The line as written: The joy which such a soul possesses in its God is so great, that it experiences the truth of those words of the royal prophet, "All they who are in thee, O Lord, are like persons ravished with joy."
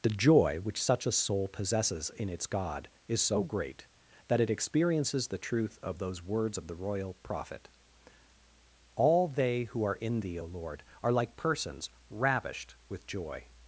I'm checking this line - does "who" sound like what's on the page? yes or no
yes